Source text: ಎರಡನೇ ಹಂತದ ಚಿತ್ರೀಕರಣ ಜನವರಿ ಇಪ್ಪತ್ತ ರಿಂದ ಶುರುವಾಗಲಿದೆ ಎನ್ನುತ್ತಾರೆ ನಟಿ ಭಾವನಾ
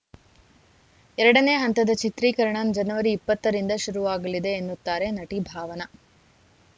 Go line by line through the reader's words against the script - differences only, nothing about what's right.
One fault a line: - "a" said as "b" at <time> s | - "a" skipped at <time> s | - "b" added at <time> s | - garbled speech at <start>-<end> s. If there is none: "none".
none